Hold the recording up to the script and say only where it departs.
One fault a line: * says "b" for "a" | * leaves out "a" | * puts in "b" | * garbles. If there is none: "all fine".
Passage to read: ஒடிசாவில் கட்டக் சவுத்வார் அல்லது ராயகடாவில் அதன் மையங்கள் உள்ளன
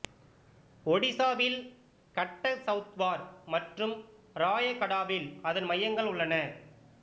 * says "மற்றும்" for "அல்லது"